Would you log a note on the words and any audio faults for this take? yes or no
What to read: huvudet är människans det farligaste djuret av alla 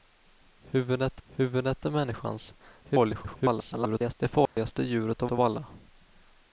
yes